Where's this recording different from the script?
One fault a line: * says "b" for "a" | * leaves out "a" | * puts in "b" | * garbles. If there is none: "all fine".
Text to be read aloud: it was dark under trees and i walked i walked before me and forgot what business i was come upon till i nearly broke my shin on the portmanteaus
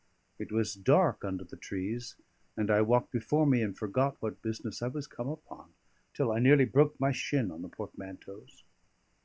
* puts in "the"
* leaves out "i walked"